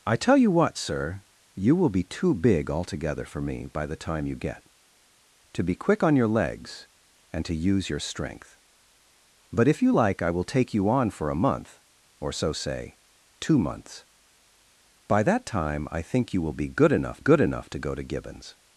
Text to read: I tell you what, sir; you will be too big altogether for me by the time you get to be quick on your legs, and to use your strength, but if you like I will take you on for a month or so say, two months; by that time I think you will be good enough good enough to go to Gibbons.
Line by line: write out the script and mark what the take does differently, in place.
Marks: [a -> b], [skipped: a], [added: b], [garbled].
I tell you what, sir; you will be too big altogether for me by the time you get to be quick on your legs, and to use your strength, but if you like I will take you on for a month or so say, two months; by that time I think you will be good enough good enough to go to Gibbons.